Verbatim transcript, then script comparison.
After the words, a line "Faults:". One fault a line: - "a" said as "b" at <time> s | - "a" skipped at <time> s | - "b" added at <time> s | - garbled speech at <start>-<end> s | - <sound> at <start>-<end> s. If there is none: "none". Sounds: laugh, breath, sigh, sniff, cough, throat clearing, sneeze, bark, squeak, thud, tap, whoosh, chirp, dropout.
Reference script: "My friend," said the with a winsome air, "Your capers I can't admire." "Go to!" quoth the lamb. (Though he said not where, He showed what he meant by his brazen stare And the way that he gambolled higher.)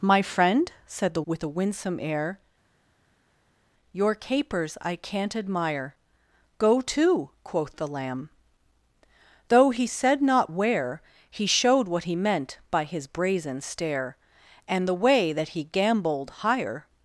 "My friend," said the with a winsome air, "Your capers I can't admire." "Go to!" quoth the lamb. (Though he said not where, He showed what he meant by his brazen stare And the way that he gambolled higher.)
Faults:
none